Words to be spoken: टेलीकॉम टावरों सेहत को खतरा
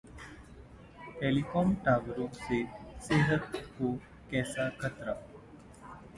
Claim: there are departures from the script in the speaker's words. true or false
true